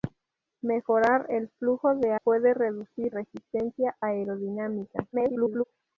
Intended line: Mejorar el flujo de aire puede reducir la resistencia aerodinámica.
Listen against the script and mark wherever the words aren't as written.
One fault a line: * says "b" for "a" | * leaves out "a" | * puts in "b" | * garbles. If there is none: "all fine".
* leaves out "aire"
* leaves out "la"
* garbles